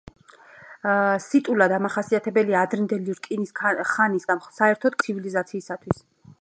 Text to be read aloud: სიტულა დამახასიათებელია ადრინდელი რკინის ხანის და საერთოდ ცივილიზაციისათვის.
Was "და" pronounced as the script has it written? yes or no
yes